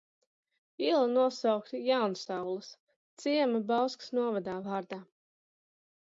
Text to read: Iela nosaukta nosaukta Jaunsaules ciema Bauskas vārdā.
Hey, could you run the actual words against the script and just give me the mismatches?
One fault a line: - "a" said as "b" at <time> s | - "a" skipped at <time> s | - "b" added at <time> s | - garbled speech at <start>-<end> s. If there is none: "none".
- "nosaukta" skipped at 1.8 s
- "novadā" added at 4.2 s